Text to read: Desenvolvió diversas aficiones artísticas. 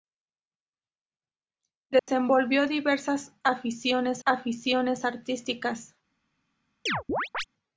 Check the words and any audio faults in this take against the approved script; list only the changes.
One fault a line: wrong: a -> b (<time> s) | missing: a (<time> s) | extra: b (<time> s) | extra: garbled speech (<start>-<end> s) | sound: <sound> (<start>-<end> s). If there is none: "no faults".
sound: dropout (2.0-2.1 s)
extra: aficiones (4.2 s)
sound: chirp (6.9-7.4 s)